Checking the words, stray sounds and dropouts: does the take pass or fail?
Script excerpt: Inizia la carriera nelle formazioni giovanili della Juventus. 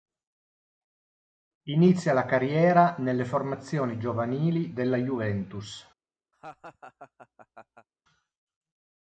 fail